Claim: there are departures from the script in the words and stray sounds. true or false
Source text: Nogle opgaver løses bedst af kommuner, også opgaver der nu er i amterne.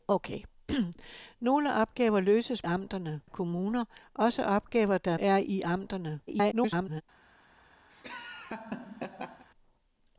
true